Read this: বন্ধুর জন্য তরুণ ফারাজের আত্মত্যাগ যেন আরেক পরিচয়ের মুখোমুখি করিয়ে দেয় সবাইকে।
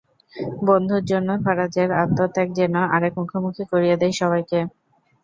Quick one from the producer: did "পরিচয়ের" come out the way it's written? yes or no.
no